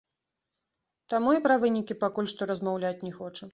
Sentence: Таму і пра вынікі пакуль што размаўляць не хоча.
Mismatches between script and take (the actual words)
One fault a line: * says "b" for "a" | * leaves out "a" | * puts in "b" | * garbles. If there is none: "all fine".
all fine